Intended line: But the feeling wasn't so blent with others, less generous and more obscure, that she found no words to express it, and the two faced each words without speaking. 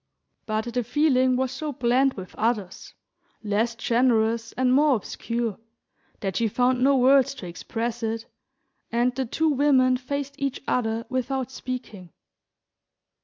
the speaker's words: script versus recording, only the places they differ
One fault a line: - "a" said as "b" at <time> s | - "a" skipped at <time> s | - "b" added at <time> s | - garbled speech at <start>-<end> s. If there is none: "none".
- "wasn't" said as "was" at 1.4 s
- "women" added at 9.5 s
- "words" said as "other" at 10.7 s